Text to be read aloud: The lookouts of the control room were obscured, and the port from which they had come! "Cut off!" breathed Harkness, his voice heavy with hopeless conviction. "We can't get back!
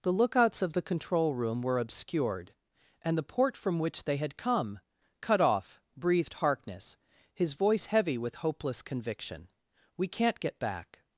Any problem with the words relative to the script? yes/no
no